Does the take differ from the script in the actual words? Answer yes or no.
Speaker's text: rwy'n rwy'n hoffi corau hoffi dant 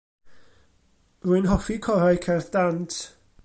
yes